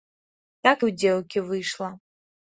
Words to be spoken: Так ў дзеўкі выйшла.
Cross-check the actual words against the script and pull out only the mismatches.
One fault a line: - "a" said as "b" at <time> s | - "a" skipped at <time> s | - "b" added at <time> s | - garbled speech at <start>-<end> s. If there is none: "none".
none